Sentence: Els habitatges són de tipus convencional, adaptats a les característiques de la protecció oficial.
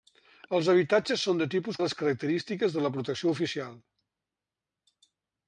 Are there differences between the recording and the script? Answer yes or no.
yes